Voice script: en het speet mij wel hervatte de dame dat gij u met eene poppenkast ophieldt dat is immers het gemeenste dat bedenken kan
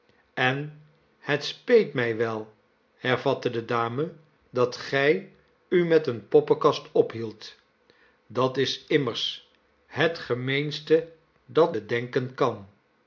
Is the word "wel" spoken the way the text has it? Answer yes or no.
yes